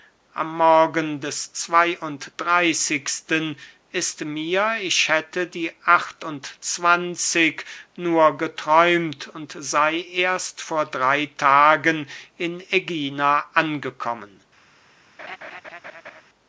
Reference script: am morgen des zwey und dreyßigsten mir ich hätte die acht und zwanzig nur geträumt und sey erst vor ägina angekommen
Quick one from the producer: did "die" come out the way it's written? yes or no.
yes